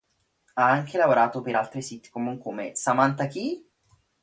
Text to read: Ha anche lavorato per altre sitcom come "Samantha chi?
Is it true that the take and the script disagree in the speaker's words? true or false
false